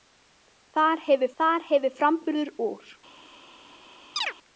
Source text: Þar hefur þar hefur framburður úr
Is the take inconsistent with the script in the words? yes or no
no